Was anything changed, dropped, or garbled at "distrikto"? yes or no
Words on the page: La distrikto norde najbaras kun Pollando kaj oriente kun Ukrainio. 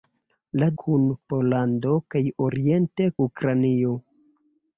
yes